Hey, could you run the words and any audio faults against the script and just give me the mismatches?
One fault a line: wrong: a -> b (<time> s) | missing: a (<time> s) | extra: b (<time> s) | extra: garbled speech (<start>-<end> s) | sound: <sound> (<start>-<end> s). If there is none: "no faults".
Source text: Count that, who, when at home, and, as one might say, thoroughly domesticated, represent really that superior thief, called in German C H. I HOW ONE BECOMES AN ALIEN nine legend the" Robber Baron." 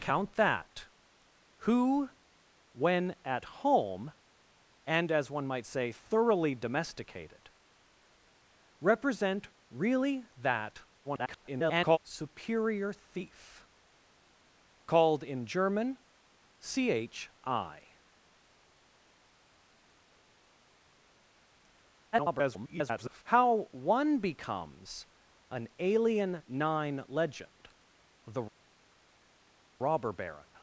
extra: garbled speech (11.0-12.0 s)
extra: garbled speech (22.1-23.2 s)